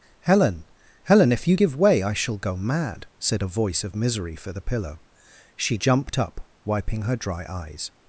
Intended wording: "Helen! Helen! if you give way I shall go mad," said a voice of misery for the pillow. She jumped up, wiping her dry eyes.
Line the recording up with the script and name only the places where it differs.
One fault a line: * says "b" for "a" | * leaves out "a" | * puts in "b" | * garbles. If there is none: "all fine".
all fine